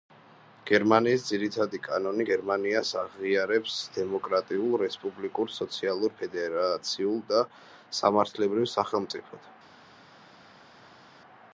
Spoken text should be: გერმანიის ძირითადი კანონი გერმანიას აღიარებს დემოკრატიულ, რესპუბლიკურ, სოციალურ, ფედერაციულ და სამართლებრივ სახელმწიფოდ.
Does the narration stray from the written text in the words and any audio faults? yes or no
no